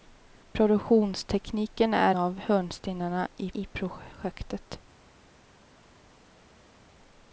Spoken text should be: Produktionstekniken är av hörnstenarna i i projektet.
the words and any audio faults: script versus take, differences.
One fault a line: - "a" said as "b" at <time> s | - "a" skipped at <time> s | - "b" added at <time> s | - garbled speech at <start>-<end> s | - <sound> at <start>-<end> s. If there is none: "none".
none